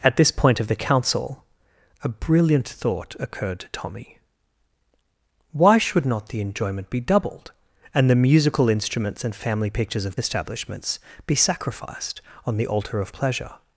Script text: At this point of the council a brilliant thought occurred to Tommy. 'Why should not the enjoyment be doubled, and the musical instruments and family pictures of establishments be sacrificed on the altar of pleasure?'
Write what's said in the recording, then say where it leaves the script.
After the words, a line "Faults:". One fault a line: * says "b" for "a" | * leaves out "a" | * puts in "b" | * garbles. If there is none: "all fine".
At this point of the council a brilliant thought occurred to Tommy. 'Why should not the enjoyment be doubled, and the musical instruments and family pictures of establishments be sacrificed on the altar of pleasure?'
Faults:
all fine